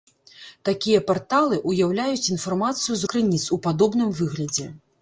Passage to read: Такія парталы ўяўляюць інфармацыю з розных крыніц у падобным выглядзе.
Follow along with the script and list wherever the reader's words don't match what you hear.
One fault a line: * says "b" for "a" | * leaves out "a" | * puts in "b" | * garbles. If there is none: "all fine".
* leaves out "розных"